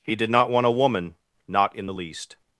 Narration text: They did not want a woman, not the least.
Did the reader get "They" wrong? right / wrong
wrong